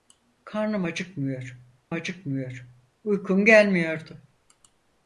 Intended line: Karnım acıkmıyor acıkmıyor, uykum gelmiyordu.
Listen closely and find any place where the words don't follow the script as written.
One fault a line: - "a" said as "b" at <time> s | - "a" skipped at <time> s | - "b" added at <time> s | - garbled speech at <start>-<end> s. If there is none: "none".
none